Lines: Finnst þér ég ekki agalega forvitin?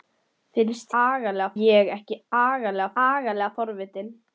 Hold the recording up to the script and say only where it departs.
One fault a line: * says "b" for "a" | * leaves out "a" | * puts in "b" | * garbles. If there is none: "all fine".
* says "agalega" for "þér"
* puts in "agalega"